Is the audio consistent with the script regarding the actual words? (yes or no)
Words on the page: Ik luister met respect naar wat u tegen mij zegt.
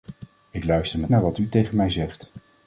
no